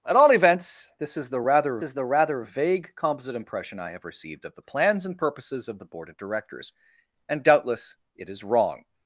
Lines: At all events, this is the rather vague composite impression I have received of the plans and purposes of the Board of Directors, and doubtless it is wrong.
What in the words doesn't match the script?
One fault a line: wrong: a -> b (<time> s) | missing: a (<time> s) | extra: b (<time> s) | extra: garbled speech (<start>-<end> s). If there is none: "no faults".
extra: is the rather (1.8 s)